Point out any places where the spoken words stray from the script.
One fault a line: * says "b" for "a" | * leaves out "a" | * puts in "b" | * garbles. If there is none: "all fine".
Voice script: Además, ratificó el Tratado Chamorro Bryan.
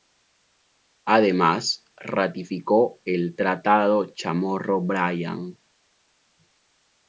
all fine